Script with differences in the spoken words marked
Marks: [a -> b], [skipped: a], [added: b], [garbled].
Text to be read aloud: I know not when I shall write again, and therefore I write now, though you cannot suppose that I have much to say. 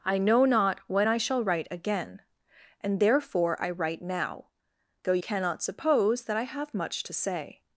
I know not when I shall write again, and therefore I write now, though [skipped: you] cannot suppose that I have much to say.